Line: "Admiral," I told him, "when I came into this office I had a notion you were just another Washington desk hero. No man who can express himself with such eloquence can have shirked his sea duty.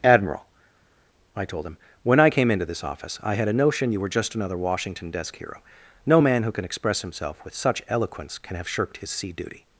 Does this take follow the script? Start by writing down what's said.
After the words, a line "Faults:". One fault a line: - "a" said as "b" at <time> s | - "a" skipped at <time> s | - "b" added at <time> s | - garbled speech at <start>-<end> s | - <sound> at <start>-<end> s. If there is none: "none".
"Admiral," I told him, "when I came into this office I had a notion you were just another Washington desk hero. No man who can express himself with such eloquence can have shirked his sea duty.
Faults:
none